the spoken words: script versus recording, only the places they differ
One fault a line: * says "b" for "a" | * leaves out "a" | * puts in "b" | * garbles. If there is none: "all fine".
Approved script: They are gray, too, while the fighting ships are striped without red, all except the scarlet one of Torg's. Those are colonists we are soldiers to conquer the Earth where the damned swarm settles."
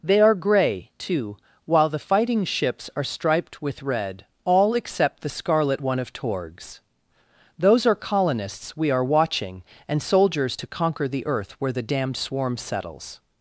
* says "with" for "without"
* puts in "watching and"